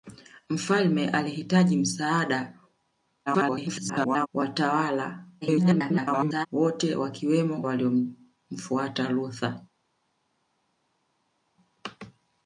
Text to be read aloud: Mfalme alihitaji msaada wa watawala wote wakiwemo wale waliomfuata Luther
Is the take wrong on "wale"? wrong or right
wrong